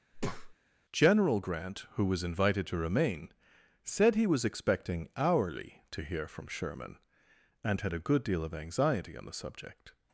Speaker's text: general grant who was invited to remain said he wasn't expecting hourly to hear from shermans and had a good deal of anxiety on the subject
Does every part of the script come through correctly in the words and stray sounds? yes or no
no